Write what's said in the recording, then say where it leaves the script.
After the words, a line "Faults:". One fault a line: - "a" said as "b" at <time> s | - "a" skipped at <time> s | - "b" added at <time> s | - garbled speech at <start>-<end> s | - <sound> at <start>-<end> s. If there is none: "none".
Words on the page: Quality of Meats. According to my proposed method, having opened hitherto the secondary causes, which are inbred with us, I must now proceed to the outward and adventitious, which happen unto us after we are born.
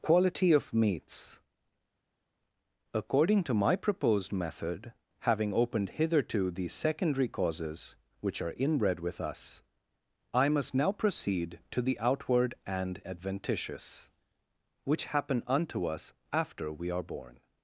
Quality of Meats. According to my proposed method, having opened hitherto the secondary causes, which are inbred with us, I must now proceed to the outward and adventitious, which happen unto us after we are born.
Faults:
none